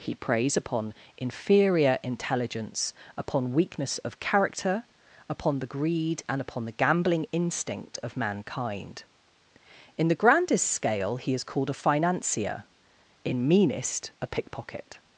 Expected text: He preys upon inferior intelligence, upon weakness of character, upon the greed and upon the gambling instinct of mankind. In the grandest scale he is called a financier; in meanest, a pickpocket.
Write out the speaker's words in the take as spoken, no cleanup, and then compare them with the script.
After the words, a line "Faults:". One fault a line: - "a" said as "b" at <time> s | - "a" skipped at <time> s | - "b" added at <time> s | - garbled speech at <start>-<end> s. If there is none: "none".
He preys upon inferior intelligence, upon weakness of character, upon the greed and upon the gambling instinct of mankind. In the grandest scale he is called a financier; in meanest, a pickpocket.
Faults:
none